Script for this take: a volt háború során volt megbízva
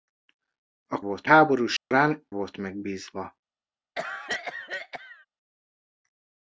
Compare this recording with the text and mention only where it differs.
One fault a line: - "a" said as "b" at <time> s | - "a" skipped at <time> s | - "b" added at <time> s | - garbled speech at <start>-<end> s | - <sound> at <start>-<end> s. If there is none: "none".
- dropout at 1.8-1.9 s
- cough at 4.0-5.3 s